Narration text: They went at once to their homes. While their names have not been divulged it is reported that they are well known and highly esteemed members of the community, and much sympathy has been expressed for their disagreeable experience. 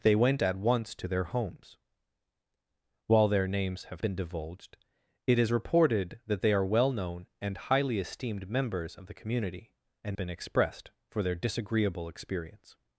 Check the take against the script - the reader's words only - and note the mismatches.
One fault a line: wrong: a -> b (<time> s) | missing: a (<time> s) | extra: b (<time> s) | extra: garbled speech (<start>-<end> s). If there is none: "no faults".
missing: not (4.0 s)
missing: much sympathy has (10.2 s)